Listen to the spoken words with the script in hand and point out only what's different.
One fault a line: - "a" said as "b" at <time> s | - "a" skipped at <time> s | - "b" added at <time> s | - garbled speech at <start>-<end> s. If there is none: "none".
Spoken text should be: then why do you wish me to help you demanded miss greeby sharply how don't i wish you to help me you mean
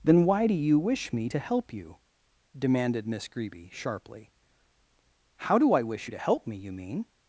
- "don't" said as "do" at 5.6 s